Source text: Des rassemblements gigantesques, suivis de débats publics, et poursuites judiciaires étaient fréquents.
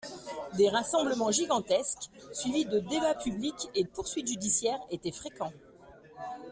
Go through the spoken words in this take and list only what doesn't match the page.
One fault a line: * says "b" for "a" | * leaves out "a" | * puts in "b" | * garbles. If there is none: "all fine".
all fine